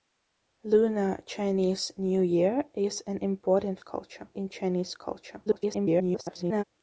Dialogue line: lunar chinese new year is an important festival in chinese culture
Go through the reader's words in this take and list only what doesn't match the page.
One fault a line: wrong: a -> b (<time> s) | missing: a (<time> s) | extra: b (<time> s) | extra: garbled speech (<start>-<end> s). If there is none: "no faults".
wrong: festival -> culture (3.8 s)
extra: garbled speech (5.4-6.6 s)